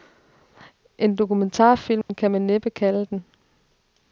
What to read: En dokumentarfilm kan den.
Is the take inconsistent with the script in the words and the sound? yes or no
yes